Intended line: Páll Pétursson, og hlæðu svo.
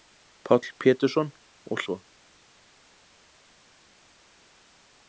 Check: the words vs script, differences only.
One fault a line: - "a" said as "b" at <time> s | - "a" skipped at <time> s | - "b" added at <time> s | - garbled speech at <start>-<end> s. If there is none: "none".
- "hlæðu" skipped at 1.8 s